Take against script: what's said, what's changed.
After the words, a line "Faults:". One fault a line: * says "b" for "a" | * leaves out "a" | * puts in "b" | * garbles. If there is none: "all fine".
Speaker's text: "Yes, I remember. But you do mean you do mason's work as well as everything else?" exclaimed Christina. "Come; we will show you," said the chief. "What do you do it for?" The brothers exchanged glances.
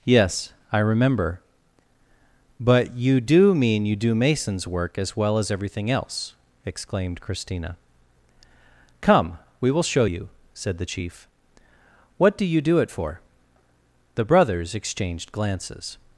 "Yes, I remember. But you do mean you do mason's work as well as everything else?" exclaimed Christina. "Come; we will show you," said the chief. "What do you do it for?" The brothers exchanged glances.
Faults:
all fine